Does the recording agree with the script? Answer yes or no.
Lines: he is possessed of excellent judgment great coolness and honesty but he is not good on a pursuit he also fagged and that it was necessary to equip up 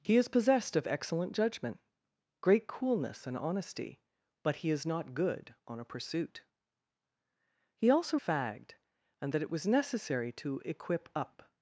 yes